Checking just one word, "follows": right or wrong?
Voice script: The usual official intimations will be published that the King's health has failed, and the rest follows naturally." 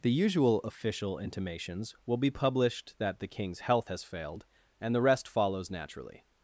right